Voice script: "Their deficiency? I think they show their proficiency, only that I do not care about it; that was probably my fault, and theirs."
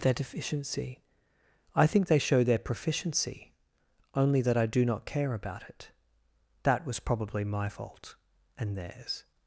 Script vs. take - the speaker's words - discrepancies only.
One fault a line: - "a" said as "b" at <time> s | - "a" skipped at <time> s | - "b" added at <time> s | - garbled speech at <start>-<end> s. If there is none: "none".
none